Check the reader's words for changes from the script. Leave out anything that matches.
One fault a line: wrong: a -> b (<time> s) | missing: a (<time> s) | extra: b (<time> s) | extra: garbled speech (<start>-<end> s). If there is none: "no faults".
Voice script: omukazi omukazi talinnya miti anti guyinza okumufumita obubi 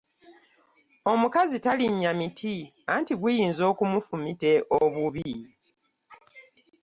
missing: omukazi (1.6 s)